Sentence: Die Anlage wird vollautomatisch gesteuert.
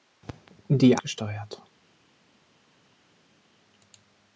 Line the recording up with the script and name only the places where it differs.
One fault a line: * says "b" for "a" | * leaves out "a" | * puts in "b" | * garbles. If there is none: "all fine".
* leaves out "Anlage wird vollautomatisch"